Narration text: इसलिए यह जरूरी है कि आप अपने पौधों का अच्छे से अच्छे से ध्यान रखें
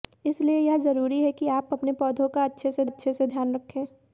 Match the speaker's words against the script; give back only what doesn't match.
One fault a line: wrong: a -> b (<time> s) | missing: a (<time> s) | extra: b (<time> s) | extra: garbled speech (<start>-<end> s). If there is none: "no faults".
no faults